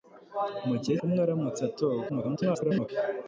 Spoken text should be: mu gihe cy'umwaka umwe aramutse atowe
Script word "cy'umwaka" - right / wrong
wrong